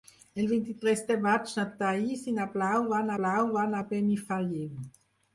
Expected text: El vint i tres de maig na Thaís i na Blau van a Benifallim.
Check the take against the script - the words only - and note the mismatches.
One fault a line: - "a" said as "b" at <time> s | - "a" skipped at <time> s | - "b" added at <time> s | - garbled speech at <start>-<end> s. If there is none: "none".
- "Blau van" added at 3.2 s